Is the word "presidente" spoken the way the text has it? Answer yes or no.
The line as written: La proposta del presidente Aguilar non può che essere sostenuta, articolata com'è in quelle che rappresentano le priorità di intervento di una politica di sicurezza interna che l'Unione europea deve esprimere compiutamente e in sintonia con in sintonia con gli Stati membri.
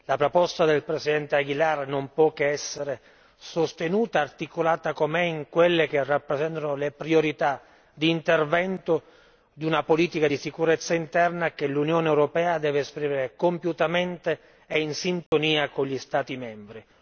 yes